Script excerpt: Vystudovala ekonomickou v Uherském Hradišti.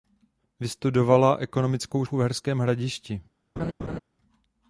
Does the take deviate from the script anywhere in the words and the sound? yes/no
yes